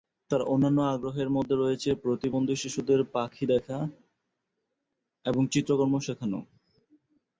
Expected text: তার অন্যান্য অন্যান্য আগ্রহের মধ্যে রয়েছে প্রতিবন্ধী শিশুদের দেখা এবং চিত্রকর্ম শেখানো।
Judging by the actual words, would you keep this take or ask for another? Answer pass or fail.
fail